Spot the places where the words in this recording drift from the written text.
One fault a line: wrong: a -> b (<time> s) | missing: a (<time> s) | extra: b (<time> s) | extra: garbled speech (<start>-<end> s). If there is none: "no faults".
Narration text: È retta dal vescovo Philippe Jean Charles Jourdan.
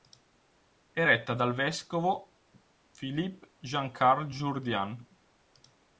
no faults